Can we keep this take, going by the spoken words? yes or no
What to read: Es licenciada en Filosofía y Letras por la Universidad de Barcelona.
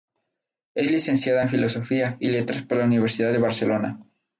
yes